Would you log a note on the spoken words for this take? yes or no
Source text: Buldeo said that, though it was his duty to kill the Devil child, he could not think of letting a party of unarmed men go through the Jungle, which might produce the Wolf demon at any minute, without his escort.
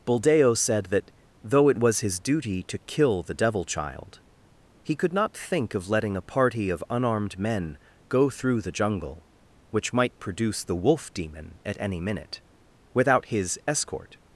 no